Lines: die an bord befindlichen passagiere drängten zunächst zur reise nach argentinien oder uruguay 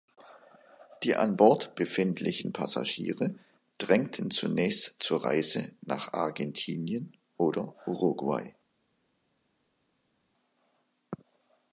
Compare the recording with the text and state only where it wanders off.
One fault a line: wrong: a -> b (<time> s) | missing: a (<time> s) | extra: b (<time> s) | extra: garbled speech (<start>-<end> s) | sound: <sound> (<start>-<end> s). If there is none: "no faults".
no faults